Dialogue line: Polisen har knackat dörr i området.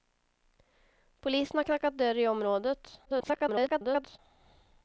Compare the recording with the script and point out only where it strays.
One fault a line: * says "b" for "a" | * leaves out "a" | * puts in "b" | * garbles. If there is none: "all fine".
* garbles